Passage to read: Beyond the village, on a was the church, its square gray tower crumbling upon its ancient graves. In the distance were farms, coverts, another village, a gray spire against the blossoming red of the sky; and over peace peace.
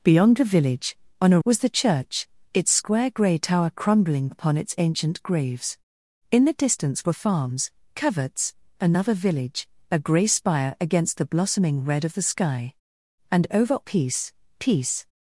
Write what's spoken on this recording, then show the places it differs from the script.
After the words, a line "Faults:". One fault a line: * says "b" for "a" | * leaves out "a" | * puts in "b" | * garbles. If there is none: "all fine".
Beyond the village, on a was the church, its square gray tower crumbling upon its ancient graves. In the distance were farms, coverts, another village, a gray spire against the blossoming red of the sky; and over peace peace.
Faults:
all fine